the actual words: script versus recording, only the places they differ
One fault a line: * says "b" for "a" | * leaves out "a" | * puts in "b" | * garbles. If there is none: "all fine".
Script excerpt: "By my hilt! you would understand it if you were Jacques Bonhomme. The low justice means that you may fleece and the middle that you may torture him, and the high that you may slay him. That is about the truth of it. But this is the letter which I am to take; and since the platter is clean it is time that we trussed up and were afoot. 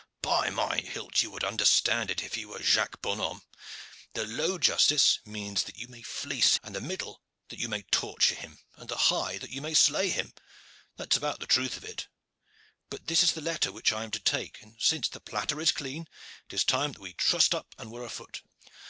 all fine